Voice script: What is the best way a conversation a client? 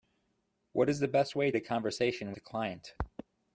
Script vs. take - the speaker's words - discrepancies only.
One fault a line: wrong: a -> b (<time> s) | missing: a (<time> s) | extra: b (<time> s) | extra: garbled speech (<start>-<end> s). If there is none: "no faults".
no faults